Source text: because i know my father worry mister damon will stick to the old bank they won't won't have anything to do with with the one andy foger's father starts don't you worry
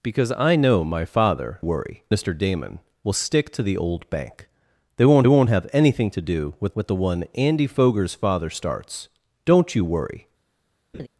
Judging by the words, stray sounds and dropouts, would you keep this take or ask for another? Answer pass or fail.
fail